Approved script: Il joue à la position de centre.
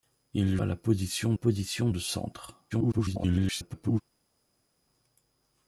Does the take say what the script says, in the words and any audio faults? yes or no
no